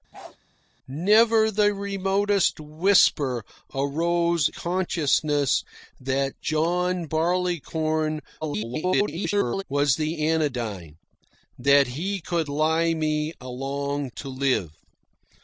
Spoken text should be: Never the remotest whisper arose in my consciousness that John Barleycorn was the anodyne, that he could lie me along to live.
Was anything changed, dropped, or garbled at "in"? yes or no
yes